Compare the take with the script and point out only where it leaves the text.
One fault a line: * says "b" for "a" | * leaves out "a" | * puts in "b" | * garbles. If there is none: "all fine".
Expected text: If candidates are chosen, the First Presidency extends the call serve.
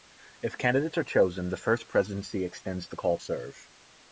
all fine